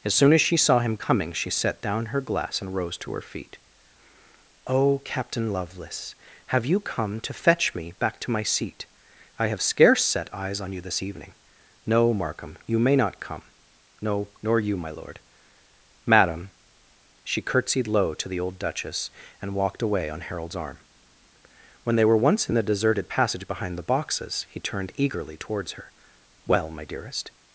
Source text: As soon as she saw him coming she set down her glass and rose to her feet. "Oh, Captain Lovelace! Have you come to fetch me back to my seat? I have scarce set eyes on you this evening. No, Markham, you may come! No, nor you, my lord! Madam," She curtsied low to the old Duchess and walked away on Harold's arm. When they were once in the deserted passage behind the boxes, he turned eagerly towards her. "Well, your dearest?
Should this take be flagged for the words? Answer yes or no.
yes